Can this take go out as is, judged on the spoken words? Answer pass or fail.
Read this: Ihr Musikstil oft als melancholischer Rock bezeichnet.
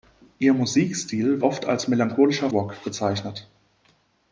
pass